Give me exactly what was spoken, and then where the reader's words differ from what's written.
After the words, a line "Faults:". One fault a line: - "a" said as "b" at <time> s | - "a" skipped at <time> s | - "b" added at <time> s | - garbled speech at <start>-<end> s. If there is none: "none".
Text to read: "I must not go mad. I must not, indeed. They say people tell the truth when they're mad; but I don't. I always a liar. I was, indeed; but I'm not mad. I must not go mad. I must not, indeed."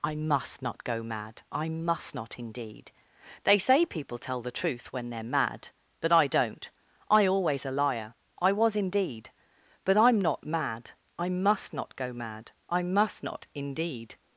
"I must not go mad. I must not, indeed. They say people tell the truth when they're mad; but I don't. I always a liar. I was, indeed; but I'm not mad. I must not go mad. I must not, indeed."
Faults:
none